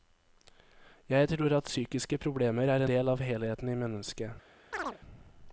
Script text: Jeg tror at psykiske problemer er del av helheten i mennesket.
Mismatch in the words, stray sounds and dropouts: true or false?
true